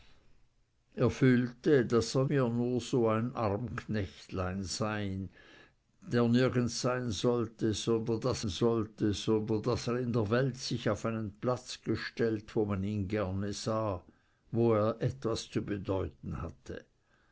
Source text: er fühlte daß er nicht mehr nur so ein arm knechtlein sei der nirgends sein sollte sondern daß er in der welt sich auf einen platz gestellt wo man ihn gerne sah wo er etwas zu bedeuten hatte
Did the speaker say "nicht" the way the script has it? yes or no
no